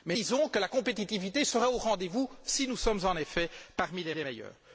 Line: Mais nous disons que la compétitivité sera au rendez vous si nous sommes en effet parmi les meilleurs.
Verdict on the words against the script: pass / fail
fail